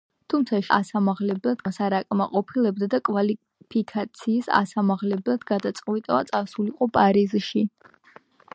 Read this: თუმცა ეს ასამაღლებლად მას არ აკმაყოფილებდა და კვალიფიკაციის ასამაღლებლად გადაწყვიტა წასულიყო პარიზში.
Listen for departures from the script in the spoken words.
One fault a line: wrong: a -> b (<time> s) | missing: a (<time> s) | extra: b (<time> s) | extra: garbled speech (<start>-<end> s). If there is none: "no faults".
no faults